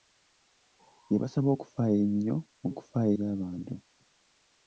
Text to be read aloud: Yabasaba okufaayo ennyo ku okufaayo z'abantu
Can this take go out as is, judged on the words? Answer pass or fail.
pass